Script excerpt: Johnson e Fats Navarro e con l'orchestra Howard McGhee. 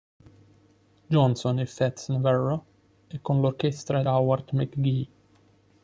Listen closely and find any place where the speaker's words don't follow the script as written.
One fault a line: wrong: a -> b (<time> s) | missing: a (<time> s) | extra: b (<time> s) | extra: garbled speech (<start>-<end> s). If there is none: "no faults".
no faults